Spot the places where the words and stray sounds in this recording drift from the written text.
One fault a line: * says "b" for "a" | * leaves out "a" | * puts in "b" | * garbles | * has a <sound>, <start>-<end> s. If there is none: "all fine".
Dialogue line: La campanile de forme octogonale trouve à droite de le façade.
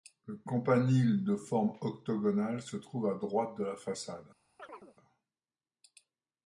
* says "Le" for "La"
* puts in "se"
* says "la" for "le"
* has a chirp, 4.6-5.0 s